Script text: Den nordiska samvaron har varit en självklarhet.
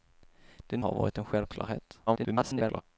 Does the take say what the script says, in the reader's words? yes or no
no